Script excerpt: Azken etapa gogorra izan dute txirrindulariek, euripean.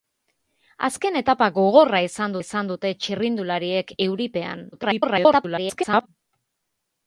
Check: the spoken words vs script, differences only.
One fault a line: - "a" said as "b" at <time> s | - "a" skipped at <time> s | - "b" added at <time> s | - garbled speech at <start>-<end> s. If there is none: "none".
- "izan" added at 2.4 s
- garbled speech at 4.7-6.1 s